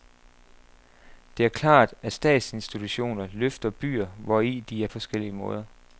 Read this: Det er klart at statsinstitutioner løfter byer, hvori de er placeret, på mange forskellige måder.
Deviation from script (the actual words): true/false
true